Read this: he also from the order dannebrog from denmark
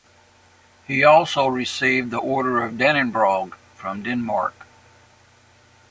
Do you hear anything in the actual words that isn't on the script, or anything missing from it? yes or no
yes